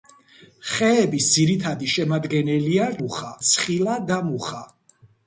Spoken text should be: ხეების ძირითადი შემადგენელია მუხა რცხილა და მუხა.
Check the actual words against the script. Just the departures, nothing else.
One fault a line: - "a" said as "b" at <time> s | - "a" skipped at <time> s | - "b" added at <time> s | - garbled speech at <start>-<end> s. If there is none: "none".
none